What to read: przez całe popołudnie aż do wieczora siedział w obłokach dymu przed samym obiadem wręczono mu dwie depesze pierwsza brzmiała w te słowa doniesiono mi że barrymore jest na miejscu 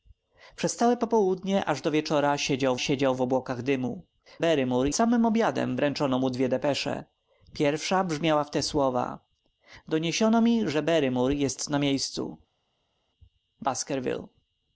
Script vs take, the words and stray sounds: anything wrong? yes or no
yes